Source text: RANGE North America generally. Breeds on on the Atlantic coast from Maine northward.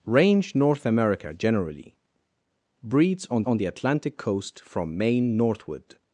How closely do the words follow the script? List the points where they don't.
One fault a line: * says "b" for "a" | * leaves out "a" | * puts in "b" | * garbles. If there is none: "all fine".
all fine